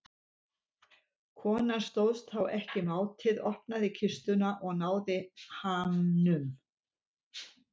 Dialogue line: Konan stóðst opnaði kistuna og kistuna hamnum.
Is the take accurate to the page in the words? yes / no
no